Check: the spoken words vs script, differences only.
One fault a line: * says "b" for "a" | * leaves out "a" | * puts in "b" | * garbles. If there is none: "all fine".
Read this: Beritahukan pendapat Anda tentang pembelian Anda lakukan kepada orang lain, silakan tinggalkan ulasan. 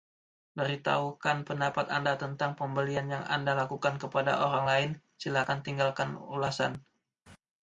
* puts in "yang"